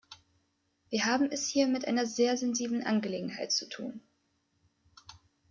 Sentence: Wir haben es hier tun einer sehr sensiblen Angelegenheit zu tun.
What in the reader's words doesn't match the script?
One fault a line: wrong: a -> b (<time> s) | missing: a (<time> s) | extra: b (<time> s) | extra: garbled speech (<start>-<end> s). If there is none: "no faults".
wrong: tun -> mit (1.7 s)